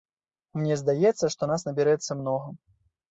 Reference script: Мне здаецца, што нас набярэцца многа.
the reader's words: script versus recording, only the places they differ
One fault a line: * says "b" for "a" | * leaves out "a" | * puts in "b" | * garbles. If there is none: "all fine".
all fine